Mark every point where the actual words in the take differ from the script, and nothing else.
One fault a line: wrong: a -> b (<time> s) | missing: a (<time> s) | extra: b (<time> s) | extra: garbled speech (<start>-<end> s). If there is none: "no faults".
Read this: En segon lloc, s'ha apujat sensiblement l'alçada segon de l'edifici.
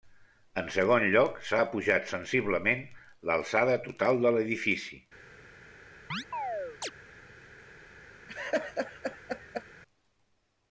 wrong: segon -> total (3.9 s)